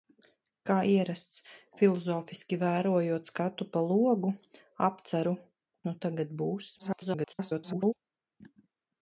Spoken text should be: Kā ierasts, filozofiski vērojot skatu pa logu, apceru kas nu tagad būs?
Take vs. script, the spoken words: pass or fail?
fail